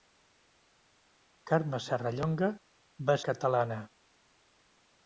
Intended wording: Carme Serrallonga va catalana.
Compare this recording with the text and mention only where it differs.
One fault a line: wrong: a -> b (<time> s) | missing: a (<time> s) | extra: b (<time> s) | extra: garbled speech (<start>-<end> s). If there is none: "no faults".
no faults